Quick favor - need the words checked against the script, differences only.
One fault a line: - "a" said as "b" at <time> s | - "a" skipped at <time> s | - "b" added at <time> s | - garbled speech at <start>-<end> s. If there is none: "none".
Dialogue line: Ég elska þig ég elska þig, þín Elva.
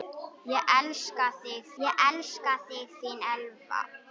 none